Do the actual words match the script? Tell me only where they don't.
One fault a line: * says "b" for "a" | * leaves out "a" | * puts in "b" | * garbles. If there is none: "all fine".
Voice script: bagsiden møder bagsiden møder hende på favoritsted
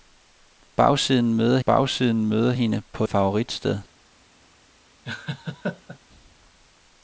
all fine